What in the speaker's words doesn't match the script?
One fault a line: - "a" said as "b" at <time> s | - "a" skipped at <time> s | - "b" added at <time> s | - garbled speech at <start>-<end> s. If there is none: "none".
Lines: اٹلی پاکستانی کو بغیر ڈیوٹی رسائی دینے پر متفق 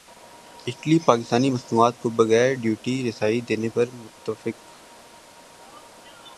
- "مصنوعات" added at 1.5 s